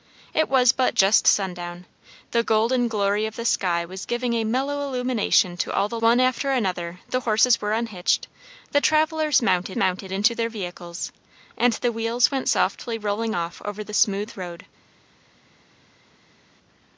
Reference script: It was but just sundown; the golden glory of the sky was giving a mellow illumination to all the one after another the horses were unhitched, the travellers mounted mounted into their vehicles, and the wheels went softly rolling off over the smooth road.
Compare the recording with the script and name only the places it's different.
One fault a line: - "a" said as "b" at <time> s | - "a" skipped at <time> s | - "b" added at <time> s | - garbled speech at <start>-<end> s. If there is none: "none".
none